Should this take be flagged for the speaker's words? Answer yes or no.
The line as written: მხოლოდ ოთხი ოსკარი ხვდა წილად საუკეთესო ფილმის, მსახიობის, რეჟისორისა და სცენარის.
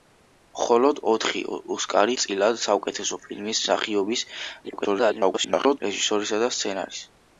yes